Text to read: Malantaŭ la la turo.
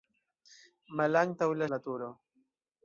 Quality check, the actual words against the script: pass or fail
pass